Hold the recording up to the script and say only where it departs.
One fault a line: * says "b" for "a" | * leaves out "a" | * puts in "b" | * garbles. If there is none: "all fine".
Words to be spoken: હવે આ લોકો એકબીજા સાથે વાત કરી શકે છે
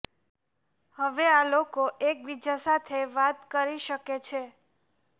all fine